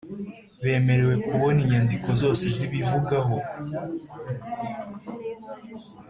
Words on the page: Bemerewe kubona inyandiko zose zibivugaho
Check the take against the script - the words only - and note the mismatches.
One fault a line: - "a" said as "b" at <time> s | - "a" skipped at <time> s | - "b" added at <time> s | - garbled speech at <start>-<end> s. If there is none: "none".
none